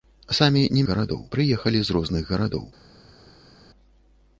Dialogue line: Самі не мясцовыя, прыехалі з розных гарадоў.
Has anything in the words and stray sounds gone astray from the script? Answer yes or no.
yes